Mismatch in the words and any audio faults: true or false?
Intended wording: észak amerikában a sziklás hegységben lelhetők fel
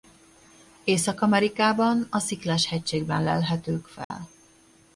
true